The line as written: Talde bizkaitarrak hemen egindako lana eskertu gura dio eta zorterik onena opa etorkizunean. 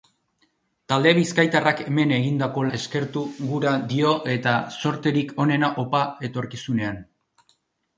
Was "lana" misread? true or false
true